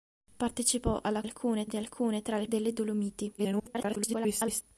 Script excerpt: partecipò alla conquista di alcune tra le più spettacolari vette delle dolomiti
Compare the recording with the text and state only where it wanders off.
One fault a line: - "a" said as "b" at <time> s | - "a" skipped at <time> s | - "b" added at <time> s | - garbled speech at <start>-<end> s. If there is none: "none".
- "conquista" said as "alcune" at 1.2 s
- "più spettacolari vette" skipped at 2.5 s
- garbled speech at 3.4-4.6 s